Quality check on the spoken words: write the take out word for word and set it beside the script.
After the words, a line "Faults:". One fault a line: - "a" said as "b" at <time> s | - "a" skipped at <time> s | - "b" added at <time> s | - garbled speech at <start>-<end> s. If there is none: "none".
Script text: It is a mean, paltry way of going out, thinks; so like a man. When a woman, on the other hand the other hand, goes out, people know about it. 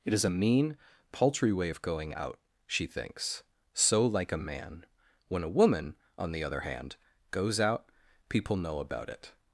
It is a mean, paltry way of going out, she thinks; so like a man. When a woman, on the other hand, goes out, people know about it.
Faults:
- "she" added at 2.7 s
- "the other hand" skipped at 7.0 s